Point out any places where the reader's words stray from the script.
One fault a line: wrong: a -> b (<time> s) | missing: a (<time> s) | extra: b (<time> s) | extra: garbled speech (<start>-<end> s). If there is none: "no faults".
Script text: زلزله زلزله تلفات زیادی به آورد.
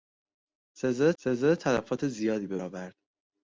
no faults